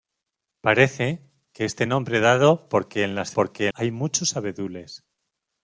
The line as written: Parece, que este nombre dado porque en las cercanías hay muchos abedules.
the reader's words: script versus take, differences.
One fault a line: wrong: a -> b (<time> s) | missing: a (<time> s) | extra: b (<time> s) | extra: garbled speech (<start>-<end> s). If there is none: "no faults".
wrong: cercanías -> porque (3.3 s)